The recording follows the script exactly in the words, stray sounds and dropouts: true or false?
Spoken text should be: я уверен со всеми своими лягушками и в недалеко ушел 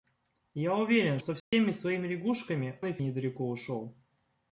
false